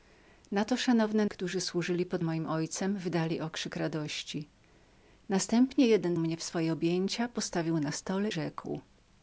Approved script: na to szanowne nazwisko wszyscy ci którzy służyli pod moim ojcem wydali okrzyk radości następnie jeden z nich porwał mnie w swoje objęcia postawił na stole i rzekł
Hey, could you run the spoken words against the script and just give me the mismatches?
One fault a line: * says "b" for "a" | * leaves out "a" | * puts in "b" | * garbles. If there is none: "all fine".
* leaves out "nazwisko wszyscy ci"
* leaves out "z nich porwał"
* leaves out "i"